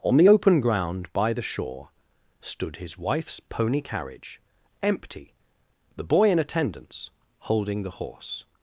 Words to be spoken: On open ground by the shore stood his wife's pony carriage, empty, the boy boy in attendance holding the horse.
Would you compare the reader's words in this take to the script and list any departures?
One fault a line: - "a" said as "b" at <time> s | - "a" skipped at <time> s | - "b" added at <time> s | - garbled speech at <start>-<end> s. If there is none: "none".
- "the" added at 0.2 s
- "boy" skipped at 6.3 s